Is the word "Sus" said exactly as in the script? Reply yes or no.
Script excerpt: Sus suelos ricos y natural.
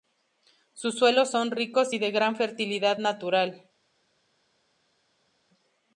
yes